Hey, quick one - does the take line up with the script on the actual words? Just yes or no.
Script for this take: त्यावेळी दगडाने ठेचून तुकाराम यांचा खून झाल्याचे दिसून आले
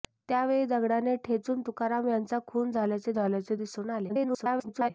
no